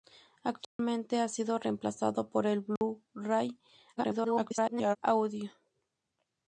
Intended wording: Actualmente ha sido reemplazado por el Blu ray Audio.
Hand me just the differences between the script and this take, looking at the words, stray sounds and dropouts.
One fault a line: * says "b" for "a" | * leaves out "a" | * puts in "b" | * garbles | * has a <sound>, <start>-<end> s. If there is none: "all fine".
* has a dropout, 0.6-0.8 s
* has a dropout, 2.8-2.8 s
* garbles